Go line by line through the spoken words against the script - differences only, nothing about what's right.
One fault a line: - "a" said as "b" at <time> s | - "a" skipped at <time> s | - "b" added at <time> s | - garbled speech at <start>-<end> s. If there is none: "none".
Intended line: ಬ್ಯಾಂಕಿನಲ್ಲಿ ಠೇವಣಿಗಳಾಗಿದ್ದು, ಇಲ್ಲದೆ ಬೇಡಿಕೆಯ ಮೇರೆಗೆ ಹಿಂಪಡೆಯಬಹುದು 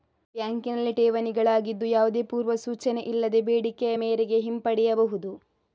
- "ಯಾವುದೇ ಪೂರ್ವ ಸೂಚನೆ" added at 1.9 s